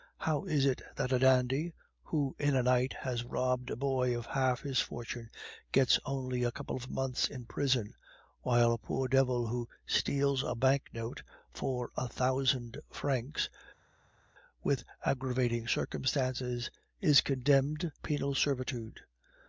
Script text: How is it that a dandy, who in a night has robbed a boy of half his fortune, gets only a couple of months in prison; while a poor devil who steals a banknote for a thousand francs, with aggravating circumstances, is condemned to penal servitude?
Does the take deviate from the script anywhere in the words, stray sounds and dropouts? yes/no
yes